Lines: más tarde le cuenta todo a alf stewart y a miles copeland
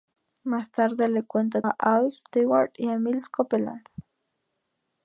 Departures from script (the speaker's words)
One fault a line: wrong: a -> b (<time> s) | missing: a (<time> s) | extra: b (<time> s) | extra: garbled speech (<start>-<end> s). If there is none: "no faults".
missing: todo (1.6 s)